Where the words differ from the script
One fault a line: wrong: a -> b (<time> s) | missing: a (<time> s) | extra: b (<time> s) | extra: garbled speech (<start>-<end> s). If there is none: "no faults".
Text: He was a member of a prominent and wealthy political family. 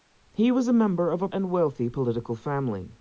missing: prominent (1.3 s)